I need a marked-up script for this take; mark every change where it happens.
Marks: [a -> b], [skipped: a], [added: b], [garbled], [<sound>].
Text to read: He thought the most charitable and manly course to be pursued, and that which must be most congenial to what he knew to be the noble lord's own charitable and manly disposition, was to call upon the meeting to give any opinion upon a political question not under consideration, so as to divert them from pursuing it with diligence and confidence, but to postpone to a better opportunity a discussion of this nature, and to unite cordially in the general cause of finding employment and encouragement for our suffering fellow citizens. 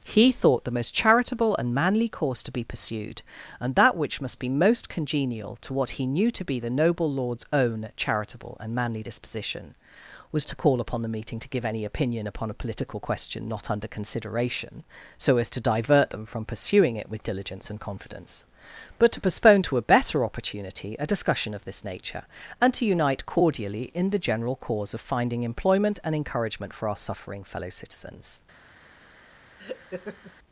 He thought the most charitable and manly course to be pursued, and that which must be most congenial to what he knew to be the noble lord's own charitable and manly disposition, was to call upon the meeting to give any opinion upon a political question not under consideration, so as to divert them from pursuing it with diligence and confidence, but to postpone to a better opportunity a discussion of this nature, and to unite cordially in the general cause of finding employment and encouragement for our suffering fellow citizens. [laugh]